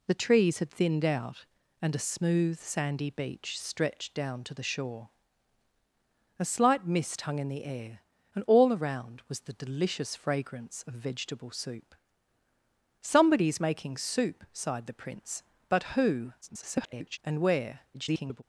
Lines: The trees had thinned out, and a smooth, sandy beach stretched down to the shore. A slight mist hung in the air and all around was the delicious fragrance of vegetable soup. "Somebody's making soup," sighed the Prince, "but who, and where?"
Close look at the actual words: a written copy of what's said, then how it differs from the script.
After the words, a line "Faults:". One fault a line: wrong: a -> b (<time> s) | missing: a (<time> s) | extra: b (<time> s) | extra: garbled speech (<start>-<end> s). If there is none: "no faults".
The trees had thinned out, and a smooth, sandy beach stretched down to the shore. A slight mist hung in the air and all around was the delicious fragrance of vegetable soup. "Somebody's making soup," sighed the Prince, "but who, [garbled] and where?" [garbled]
Faults:
extra: garbled speech (16.4-17.2 s)
extra: garbled speech (17.9-18.4 s)